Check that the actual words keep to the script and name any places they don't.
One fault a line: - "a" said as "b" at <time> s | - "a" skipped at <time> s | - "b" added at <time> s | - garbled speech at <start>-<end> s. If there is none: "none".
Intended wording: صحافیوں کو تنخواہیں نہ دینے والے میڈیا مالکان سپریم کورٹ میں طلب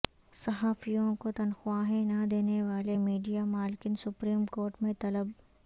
none